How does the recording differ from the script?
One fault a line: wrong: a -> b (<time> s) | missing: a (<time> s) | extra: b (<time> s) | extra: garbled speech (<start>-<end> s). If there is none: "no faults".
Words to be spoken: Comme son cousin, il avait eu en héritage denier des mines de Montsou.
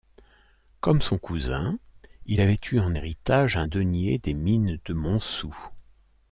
extra: un (3.6 s)